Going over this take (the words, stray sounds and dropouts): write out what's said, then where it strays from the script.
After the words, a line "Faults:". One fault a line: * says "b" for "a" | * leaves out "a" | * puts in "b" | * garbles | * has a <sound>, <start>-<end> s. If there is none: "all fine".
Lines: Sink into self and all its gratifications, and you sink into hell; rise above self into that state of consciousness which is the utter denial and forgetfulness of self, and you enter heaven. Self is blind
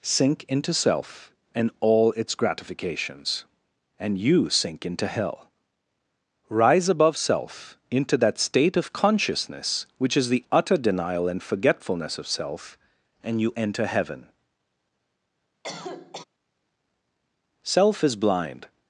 Sink into self and all its gratifications, and you sink into hell; rise above self into that state of consciousness which is the utter denial and forgetfulness of self, and you enter heaven. Self is blind
Faults:
* has a cough, 15.6-16.2 s